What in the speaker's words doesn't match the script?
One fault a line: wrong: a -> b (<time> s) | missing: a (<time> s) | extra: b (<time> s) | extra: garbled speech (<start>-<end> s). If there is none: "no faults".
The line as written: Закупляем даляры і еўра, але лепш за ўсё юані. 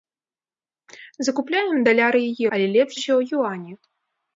missing: еўра (2.3 s)
missing: за (2.9 s)